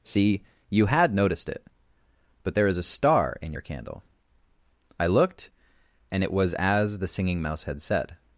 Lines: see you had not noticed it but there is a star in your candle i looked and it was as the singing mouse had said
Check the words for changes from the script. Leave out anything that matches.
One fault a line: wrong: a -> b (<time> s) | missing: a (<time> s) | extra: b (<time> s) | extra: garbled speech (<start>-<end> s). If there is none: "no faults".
missing: not (1.1 s)